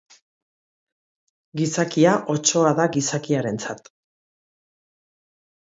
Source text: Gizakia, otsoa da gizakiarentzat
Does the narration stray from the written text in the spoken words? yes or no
no